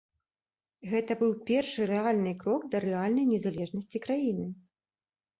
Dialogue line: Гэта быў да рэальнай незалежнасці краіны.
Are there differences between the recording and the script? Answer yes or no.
yes